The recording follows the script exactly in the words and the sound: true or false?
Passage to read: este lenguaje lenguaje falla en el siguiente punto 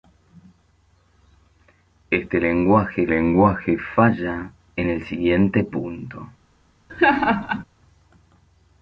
false